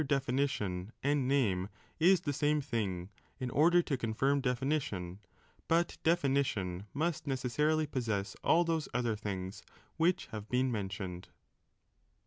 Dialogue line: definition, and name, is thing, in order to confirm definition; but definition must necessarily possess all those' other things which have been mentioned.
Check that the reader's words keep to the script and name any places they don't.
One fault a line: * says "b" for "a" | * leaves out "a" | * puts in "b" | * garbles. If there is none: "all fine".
* puts in "the same"